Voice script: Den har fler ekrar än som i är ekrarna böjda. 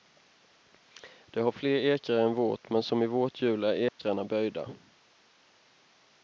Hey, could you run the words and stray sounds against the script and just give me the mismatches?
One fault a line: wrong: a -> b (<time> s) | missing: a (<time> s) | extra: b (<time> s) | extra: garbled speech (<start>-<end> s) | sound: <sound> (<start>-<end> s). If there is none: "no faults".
wrong: Den -> Det (1.2 s)
extra: vårt men (2.4 s)
extra: vårt hjul (3.1 s)
sound: dropout (3.9-4.0 s)